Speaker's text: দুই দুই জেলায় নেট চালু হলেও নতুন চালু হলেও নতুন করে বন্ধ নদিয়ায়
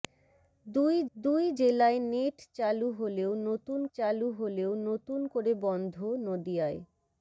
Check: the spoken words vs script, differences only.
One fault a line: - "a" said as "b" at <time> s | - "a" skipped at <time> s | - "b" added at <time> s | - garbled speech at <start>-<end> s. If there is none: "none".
none